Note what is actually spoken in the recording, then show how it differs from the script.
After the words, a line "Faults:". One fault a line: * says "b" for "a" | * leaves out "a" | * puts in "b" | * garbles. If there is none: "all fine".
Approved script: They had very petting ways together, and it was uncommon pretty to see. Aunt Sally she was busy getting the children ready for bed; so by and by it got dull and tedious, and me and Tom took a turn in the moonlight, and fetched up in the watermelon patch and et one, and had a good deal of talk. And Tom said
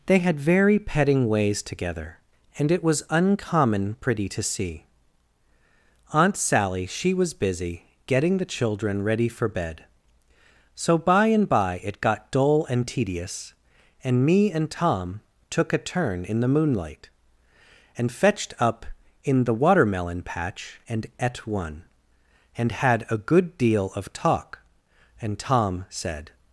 They had very petting ways together, and it was uncommon pretty to see. Aunt Sally she was busy getting the children ready for bed; so by and by it got dull and tedious, and me and Tom took a turn in the moonlight, and fetched up in the watermelon patch and et one, and had a good deal of talk. And Tom said
Faults:
all fine